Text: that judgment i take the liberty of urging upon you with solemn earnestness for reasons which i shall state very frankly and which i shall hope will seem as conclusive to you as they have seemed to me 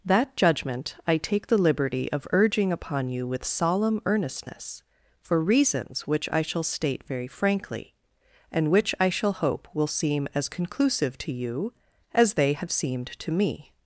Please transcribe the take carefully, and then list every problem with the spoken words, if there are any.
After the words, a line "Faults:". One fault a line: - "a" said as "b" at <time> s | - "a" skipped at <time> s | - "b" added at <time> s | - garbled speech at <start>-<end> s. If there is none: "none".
that judgment i take the liberty of urging upon you with solemn earnestness for reasons which i shall state very frankly and which i shall hope will seem as conclusive to you as they have seemed to me
Faults:
none